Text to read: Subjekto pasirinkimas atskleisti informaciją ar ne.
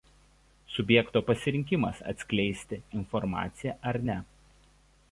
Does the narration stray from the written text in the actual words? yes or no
no